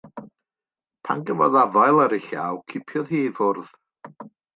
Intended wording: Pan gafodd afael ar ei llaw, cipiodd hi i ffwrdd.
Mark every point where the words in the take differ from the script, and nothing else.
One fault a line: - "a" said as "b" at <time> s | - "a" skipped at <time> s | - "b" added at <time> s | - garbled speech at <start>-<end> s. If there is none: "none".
none